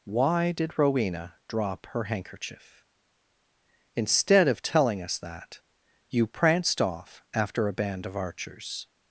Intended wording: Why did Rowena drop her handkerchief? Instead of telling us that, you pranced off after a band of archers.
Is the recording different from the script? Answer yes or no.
no